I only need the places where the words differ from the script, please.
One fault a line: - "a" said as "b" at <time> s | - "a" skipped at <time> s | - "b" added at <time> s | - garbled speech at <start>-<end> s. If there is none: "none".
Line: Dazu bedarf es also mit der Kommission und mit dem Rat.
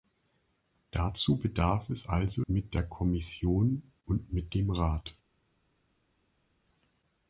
none